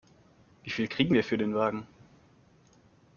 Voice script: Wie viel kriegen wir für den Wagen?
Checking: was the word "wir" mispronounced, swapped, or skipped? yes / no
no